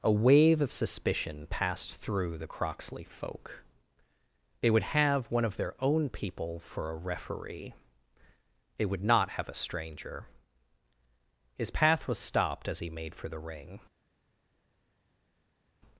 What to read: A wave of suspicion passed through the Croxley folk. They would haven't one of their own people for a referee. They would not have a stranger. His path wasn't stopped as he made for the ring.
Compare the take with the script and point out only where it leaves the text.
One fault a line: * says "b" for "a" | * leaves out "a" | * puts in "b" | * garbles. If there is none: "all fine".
* says "have" for "haven't"
* says "was" for "wasn't"